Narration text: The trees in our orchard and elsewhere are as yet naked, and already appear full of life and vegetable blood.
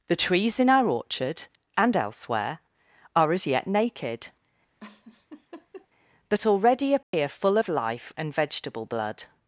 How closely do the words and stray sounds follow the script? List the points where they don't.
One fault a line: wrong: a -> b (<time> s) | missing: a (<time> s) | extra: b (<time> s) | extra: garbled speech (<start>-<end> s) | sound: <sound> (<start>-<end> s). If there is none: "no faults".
sound: laugh (4.8-5.9 s)
wrong: and -> but (6.3 s)
sound: dropout (7.0-7.1 s)